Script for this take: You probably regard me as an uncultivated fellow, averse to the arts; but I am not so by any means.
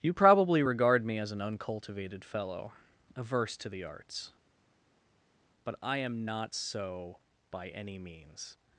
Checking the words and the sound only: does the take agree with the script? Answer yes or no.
yes